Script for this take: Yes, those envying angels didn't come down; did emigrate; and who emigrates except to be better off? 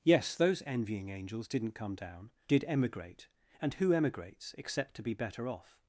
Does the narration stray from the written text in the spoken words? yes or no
no